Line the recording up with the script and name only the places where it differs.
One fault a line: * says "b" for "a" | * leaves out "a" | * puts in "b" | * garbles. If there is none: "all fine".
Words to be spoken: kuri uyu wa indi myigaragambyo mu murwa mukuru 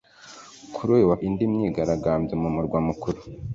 all fine